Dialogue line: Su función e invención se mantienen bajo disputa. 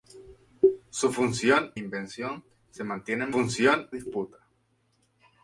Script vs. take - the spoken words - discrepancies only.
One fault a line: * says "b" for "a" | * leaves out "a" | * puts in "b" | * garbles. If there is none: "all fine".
* leaves out "e"
* says "función" for "bajo"